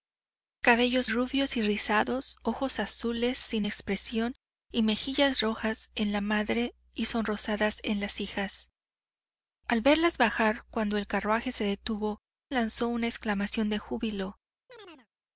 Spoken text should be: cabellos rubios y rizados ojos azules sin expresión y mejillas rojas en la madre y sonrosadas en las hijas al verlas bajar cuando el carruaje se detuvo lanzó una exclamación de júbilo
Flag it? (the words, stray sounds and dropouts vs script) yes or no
yes